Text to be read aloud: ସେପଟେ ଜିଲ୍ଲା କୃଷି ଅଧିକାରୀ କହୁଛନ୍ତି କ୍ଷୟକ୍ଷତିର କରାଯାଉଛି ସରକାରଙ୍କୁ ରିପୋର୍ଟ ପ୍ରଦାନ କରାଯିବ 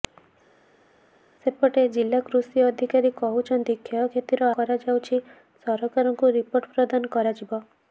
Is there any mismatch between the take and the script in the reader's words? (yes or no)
no